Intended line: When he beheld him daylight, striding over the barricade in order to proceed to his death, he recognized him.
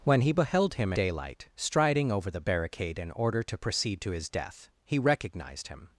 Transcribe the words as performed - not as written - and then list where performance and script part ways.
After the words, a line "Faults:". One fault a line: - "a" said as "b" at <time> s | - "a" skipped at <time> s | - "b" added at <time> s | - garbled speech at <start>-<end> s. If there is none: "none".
When he beheld him daylight, striding over the barricade in order to proceed to his death, he recognized him.
Faults:
none